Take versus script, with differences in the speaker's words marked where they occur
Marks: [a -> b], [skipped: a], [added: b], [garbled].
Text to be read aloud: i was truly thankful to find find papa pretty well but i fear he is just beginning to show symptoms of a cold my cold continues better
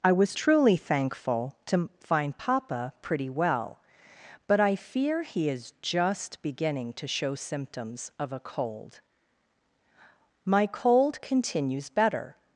i was truly thankful to find [skipped: find] papa pretty well but i fear he is just beginning to show symptoms of a cold my cold continues better